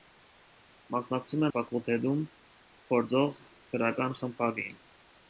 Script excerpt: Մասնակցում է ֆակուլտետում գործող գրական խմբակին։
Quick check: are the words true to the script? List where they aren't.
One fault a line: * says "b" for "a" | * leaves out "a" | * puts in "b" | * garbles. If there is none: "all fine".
all fine